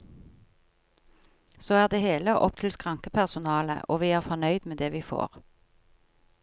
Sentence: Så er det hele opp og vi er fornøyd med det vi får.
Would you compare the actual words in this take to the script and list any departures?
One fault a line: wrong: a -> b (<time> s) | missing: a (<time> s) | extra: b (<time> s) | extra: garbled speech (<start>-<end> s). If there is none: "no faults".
extra: til skrankepersonalet (2.6 s)